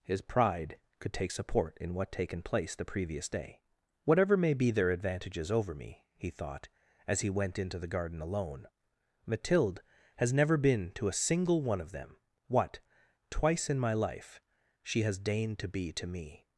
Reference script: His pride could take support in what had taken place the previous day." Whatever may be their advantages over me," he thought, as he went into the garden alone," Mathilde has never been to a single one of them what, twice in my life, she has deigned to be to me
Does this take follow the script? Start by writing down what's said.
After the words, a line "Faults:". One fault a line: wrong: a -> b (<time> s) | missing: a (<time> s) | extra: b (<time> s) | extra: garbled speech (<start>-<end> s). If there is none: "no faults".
His pride could take support in what taken place the previous day." Whatever may be their advantages over me," he thought, as he went into the garden alone," Mathilde has never been to a single one of them what, twice in my life, she has deigned to be to me
Faults:
missing: had (2.1 s)